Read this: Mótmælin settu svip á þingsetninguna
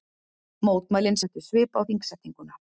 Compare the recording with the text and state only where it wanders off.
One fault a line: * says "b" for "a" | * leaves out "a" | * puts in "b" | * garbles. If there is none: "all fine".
all fine